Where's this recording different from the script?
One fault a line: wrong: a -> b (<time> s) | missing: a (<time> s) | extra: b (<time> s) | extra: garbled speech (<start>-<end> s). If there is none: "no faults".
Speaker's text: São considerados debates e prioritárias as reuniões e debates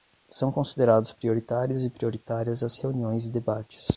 wrong: debates -> prioritários (1.1 s)